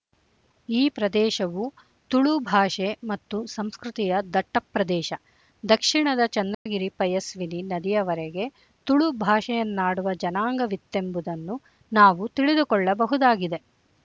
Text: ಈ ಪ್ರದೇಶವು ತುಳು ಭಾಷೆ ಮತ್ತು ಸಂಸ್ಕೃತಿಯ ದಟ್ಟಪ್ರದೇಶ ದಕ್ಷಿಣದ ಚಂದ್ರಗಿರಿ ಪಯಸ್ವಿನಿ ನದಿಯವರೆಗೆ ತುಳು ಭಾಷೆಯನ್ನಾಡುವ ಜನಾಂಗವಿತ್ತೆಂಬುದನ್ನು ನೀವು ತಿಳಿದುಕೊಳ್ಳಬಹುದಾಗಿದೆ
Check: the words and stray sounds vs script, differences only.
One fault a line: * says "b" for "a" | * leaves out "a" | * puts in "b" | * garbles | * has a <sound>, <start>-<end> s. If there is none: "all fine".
* has a dropout, 6.5-6.7 s
* says "ನಾವು" for "ನೀವು"